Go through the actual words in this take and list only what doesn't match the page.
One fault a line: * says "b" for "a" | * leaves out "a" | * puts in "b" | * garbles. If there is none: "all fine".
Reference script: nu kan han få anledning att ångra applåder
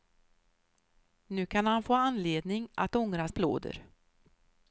all fine